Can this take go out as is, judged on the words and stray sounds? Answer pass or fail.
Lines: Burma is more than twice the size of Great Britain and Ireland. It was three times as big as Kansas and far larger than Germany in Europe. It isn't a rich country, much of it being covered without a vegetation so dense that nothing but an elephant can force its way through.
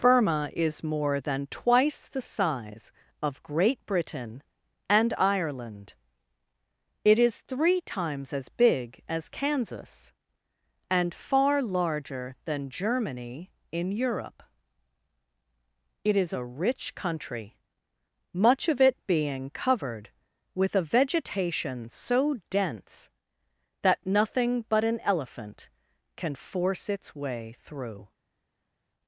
fail